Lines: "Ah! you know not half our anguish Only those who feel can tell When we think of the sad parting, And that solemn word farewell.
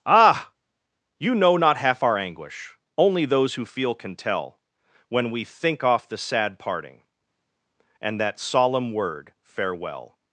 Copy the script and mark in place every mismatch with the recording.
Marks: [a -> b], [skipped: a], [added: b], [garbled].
"Ah! you know not half our anguish Only those who feel can tell When we think [of -> off] the sad parting, And that solemn word farewell.